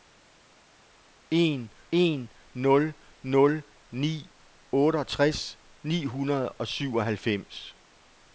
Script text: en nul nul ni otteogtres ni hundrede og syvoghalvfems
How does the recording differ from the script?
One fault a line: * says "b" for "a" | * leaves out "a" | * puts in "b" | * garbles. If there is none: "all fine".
* puts in "en"